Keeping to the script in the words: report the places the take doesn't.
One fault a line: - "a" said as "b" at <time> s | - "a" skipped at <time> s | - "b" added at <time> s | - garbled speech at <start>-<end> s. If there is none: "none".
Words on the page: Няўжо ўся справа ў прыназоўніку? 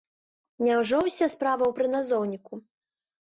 none